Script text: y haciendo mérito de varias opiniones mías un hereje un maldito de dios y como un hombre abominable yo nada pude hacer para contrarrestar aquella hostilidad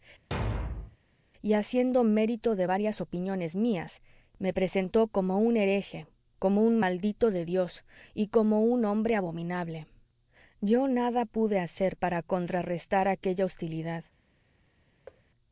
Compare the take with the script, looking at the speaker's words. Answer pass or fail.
fail